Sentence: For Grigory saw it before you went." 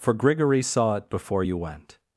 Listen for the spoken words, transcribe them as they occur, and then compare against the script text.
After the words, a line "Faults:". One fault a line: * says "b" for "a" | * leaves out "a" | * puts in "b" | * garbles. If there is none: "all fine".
For Grigory saw it before you went."
Faults:
all fine